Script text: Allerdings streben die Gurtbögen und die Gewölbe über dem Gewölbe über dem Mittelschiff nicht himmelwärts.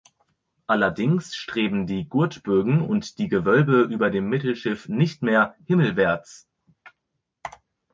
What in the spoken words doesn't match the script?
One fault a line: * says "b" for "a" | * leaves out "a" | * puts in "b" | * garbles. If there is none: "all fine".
* leaves out "Gewölbe über dem"
* puts in "mehr"